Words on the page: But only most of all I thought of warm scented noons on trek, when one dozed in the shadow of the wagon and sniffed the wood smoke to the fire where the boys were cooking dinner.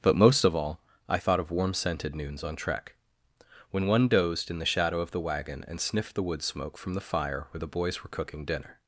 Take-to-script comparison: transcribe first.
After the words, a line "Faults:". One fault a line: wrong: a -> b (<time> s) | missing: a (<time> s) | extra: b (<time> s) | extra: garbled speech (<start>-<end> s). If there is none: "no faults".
But most of all I thought of warm scented noons on trek, when one dozed in the shadow of the wagon and sniffed the wood smoke from the fire where the boys were cooking dinner.
Faults:
missing: only (0.1 s)
wrong: to -> from (6.8 s)